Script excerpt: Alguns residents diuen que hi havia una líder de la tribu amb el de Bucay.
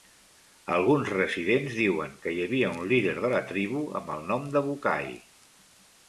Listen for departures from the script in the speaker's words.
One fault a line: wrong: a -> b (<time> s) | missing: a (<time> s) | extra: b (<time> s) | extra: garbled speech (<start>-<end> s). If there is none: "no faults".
wrong: una -> un (2.8 s)
extra: nom (4.3 s)